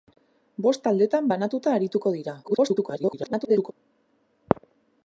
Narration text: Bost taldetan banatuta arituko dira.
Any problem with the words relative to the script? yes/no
yes